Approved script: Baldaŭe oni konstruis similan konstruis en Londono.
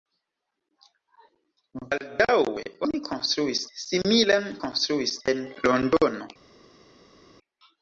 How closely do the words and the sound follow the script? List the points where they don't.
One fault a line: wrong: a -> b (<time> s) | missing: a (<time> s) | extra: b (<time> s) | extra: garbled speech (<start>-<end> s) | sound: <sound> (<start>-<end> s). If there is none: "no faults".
no faults